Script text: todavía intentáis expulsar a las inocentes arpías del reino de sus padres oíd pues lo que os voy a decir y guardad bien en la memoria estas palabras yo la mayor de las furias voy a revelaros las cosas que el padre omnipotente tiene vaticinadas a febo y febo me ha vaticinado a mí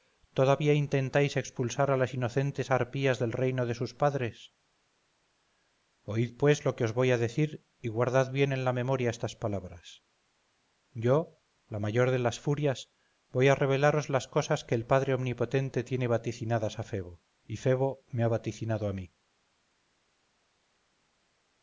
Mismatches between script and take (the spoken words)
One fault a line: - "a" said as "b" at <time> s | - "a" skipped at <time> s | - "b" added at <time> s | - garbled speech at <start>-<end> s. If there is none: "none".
none